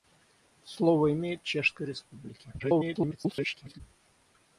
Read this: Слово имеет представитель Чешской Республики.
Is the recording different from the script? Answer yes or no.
yes